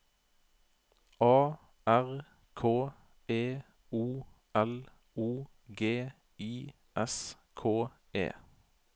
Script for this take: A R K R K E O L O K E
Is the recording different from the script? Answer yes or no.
yes